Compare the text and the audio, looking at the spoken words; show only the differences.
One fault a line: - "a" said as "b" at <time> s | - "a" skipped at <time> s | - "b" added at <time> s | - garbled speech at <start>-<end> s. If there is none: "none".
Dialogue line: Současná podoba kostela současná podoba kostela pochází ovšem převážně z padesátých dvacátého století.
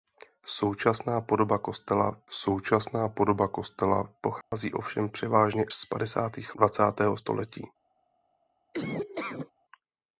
none